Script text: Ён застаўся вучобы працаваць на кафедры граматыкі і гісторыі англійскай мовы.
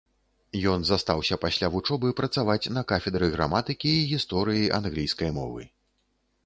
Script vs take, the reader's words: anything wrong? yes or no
yes